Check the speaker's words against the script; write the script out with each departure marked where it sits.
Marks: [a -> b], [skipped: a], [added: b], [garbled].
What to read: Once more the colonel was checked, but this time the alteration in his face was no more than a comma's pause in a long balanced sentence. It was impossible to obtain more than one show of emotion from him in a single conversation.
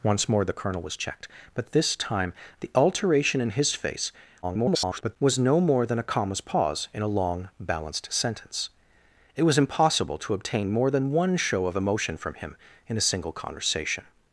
Once more the colonel was checked, but this time the alteration in his face [garbled] was no more than a comma's pause in a long balanced sentence. It was impossible to obtain more than one show of emotion from him in a single conversation.